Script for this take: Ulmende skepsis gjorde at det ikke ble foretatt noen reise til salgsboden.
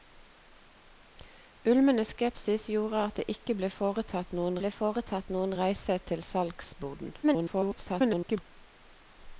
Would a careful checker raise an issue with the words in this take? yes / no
yes